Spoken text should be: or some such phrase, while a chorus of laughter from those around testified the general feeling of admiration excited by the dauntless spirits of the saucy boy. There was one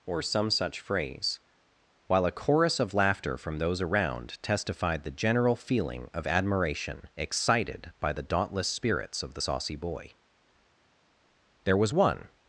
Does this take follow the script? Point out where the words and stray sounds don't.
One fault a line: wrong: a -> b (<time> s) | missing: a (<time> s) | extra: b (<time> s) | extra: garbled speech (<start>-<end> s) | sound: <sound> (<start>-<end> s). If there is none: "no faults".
no faults